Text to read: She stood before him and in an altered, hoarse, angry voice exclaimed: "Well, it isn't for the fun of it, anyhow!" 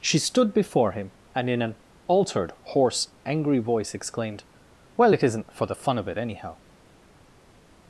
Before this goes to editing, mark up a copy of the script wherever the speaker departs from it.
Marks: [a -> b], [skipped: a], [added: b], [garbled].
She stood before him and in an altered, hoarse, angry voice exclaimed: "Well, it isn't for the fun of it, anyhow!"